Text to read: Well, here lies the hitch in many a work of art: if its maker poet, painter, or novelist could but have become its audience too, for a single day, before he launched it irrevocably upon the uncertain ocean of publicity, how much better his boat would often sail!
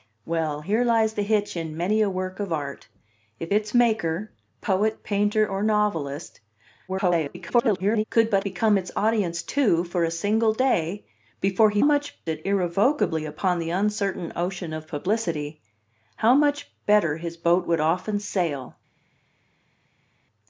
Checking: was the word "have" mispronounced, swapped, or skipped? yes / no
yes